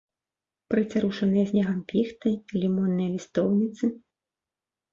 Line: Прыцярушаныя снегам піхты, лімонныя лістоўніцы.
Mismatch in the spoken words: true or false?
false